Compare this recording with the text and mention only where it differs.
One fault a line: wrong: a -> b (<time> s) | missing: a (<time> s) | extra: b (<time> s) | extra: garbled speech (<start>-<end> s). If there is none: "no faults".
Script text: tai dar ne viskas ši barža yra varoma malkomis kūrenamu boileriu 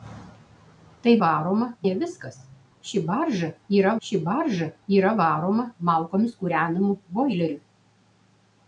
wrong: dar -> varoma (1.2 s)
extra: ši barža yra (4.1 s)